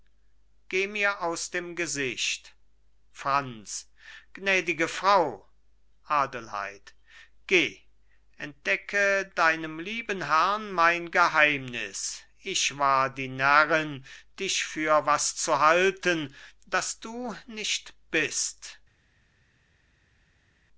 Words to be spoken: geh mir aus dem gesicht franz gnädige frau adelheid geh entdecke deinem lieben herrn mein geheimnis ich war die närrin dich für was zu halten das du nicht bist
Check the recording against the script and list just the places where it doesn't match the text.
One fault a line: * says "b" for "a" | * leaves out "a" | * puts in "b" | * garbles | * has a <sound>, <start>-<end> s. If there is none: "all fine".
all fine